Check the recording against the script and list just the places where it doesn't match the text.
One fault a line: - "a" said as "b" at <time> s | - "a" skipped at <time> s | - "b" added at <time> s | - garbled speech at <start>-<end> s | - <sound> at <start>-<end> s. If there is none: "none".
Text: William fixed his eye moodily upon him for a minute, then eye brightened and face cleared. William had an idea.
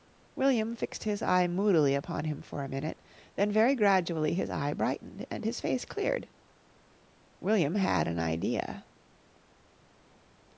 - "very gradually his" added at 3.5 s
- "his" added at 5.4 s